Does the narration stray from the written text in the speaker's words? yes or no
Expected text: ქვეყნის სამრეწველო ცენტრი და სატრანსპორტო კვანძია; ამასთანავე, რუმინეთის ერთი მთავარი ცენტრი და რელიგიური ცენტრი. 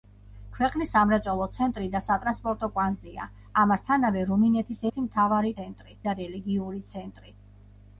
no